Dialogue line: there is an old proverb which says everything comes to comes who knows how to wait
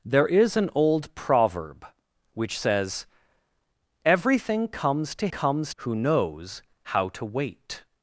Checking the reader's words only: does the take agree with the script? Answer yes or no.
yes